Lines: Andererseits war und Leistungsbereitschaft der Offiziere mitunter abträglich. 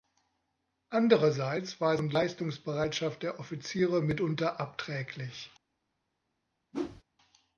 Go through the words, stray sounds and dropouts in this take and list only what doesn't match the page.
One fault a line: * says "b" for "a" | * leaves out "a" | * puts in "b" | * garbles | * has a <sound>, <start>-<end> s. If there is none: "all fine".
* has a whoosh, 6.7-7.0 s